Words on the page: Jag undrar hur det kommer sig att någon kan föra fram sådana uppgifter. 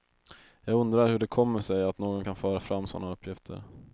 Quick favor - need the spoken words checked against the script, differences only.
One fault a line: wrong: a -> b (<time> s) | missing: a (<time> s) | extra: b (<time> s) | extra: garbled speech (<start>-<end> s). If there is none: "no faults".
no faults